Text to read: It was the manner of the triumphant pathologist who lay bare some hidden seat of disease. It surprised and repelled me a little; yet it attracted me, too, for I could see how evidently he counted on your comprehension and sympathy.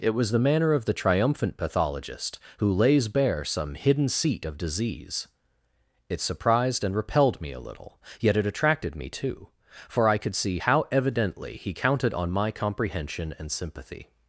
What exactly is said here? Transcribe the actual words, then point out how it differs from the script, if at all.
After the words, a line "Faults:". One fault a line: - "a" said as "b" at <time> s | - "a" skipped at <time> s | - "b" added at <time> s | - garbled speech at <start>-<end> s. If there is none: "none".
It was the manner of the triumphant pathologist who lays bare some hidden seat of disease. It surprised and repelled me a little; yet it attracted me, too, for I could see how evidently he counted on my comprehension and sympathy.
Faults:
- "lay" said as "lays" at 2.7 s
- "your" said as "my" at 12.3 s